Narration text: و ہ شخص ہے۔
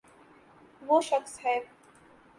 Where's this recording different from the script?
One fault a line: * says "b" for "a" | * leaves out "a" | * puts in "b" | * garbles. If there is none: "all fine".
all fine